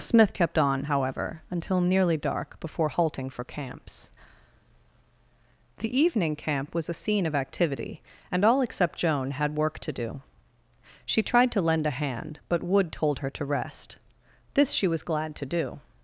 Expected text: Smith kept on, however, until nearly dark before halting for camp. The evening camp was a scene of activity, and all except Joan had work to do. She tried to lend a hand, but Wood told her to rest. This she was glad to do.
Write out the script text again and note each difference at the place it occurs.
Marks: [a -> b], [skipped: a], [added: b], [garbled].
Smith kept on, however, until nearly dark before halting for [camp. -> camps] The evening camp was a scene of activity, and all except Joan had work to do. She tried to lend a hand, but Wood told her to rest. This she was glad to do.